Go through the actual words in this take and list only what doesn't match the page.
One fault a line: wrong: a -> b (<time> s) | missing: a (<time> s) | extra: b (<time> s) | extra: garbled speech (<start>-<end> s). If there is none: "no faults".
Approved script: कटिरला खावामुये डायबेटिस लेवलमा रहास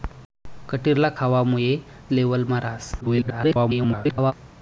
missing: डायबेटिस (1.7 s)
extra: garbled speech (3.0-4.3 s)